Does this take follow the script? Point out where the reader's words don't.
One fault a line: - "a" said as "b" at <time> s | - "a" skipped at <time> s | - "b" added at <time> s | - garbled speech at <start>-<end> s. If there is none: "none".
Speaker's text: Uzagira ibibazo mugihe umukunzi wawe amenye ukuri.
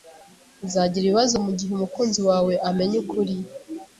none